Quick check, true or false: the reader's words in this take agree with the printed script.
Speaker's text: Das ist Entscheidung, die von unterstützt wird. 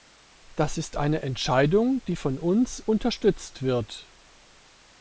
false